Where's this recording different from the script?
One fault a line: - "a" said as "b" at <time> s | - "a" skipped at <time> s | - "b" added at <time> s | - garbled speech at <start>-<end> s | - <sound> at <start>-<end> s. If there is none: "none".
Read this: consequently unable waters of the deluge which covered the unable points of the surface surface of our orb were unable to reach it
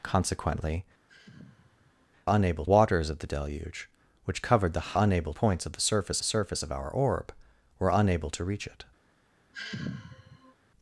- sigh at 1.1-2.1 s
- sigh at 9.5-10.5 s